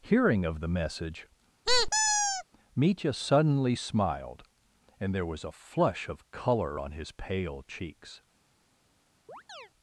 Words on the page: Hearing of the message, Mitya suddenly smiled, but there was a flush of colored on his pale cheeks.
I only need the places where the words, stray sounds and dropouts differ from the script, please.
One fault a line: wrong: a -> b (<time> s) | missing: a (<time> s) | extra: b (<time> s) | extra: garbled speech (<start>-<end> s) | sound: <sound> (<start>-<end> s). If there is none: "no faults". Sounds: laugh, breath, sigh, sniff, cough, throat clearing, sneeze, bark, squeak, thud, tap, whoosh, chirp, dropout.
sound: squeak (1.7-2.4 s)
wrong: but -> and (5.0 s)
wrong: colored -> color (6.3 s)
sound: chirp (9.3-9.7 s)